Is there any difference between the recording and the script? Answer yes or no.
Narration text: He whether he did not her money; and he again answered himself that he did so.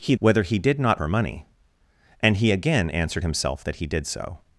no